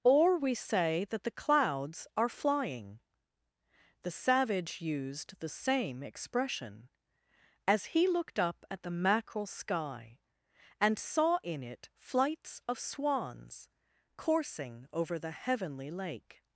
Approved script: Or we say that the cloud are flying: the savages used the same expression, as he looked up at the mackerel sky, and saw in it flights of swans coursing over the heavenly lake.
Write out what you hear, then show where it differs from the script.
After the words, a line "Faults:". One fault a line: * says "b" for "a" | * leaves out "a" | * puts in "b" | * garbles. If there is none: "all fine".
Or we say that the clouds are flying: the savage used the same expression, as he looked up at the mackerel sky, and saw in it flights of swans coursing over the heavenly lake.
Faults:
* says "clouds" for "cloud"
* says "savage" for "savages"